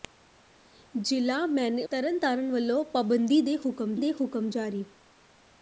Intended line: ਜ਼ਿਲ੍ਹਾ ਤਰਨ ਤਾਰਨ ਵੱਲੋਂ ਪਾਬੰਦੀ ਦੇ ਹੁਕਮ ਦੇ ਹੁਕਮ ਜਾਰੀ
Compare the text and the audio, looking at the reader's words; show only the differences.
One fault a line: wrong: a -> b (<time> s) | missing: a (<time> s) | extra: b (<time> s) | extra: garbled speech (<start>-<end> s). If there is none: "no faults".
no faults